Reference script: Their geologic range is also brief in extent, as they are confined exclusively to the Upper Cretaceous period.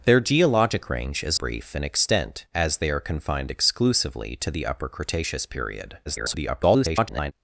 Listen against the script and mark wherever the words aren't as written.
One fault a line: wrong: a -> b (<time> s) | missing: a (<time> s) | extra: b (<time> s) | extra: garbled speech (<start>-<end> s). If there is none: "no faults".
missing: also (1.4 s)
extra: garbled speech (6.1-7.3 s)